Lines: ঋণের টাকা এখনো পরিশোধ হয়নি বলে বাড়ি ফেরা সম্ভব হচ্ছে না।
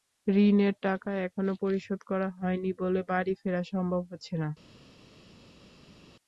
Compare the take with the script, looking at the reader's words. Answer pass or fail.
fail